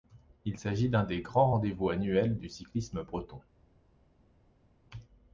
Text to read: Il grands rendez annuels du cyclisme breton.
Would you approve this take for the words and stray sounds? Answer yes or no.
no